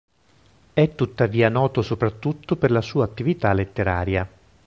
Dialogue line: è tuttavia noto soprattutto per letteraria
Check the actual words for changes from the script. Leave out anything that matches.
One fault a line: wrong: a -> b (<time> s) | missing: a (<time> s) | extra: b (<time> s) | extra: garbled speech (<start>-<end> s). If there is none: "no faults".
extra: la sua attività (2.7 s)